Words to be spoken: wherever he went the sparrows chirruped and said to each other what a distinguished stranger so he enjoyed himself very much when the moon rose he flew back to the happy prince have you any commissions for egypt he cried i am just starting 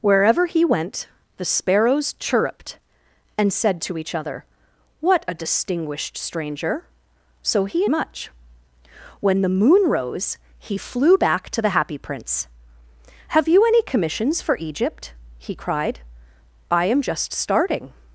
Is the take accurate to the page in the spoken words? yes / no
no